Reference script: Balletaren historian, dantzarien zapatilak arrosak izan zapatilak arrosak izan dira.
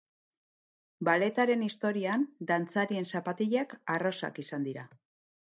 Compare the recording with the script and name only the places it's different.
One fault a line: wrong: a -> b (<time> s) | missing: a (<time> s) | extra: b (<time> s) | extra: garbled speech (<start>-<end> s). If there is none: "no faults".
missing: zapatilak arrosak izan (4.7 s)